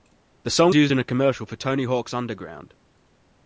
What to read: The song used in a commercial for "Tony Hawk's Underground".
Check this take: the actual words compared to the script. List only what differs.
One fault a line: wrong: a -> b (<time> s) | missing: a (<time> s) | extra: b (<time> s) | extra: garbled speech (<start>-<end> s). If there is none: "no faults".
no faults